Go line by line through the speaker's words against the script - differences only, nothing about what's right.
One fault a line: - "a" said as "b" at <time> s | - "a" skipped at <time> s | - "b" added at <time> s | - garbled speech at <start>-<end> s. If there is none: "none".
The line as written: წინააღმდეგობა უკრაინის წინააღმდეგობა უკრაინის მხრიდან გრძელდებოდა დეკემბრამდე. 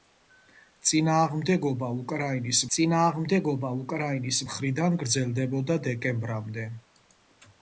none